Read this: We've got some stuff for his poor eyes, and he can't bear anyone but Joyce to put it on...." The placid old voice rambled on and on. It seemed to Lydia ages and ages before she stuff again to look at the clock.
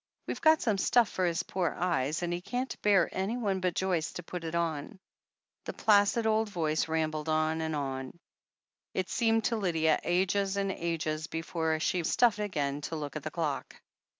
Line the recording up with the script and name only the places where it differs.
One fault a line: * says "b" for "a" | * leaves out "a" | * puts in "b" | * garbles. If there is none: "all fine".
all fine